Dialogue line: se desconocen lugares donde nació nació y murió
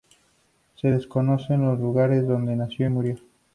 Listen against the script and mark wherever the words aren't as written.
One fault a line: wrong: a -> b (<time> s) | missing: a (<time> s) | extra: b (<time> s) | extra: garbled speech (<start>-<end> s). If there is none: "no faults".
extra: los (1.7 s)
missing: nació (2.9 s)